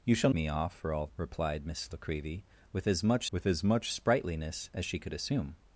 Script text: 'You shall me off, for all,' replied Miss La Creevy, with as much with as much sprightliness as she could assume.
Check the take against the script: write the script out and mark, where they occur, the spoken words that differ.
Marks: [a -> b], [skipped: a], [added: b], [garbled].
'You shall me off, for all,' replied Miss La Creevy, with as much with as much sprightliness as she could assume.